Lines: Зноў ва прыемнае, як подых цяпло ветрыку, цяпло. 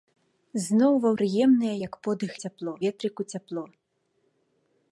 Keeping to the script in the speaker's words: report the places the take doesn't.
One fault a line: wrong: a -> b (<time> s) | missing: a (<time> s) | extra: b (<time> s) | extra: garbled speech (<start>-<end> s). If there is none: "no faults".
no faults